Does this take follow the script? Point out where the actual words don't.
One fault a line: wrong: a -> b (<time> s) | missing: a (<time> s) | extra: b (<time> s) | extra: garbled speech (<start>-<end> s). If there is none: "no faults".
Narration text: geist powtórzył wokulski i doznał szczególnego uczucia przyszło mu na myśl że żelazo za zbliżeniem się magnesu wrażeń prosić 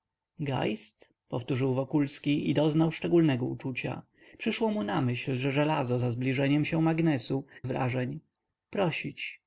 no faults